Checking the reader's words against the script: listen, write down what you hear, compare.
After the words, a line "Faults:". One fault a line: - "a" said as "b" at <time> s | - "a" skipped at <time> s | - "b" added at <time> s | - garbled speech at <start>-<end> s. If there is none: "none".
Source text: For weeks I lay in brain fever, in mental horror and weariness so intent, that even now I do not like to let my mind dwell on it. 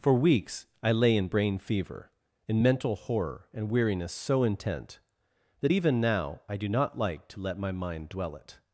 For weeks I lay in brain fever, in mental horror and weariness so intent, that even now I do not like to let my mind dwell it.
Faults:
- "on" skipped at 8.3 s